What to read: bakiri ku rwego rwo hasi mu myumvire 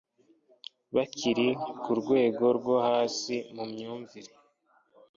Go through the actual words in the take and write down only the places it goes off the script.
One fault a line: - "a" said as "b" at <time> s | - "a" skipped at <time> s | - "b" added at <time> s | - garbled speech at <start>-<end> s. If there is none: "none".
none